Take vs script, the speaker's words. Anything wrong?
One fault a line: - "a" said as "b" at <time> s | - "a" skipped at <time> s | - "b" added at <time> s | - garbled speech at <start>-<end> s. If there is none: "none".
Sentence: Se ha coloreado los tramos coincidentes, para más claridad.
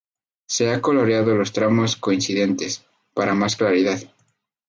none